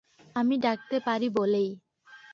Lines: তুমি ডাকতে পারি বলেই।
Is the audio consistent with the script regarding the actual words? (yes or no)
no